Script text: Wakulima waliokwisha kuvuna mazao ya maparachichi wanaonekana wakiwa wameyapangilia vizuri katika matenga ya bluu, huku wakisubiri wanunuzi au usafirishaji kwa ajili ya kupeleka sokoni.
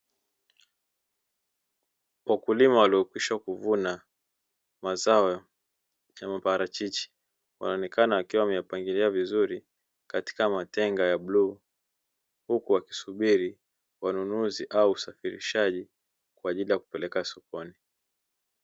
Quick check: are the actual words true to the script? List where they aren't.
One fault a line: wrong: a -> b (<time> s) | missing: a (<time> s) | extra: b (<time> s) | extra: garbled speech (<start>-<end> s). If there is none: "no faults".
no faults